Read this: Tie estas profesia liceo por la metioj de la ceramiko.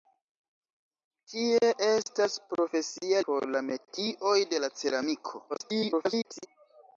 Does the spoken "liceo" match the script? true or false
false